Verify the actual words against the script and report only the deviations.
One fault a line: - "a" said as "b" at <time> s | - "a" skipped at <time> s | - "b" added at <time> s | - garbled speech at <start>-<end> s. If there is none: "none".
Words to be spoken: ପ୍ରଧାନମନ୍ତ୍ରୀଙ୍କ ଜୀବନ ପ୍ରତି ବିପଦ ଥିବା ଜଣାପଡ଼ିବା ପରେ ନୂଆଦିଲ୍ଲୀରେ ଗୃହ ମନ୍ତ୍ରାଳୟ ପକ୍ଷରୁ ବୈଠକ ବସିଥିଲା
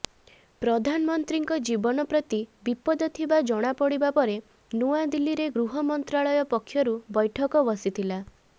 none